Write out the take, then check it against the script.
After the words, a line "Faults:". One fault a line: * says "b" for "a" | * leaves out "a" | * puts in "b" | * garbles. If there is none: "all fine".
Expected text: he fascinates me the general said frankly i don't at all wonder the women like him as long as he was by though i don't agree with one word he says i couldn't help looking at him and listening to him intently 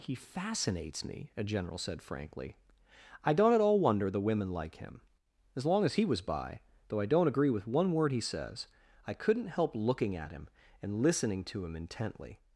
he fascinates me a general said frankly i don't at all wonder the women like him as long as he was by though i don't agree with one word he says i couldn't help looking at him and listening to him intently
Faults:
* says "a" for "the"